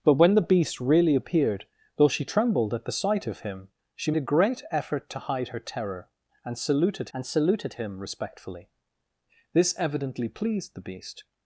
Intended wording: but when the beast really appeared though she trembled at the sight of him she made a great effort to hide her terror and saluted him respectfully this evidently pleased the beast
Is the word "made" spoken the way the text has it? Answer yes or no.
no